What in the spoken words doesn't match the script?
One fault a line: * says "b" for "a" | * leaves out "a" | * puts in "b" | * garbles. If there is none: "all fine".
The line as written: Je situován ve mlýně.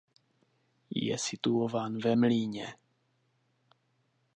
all fine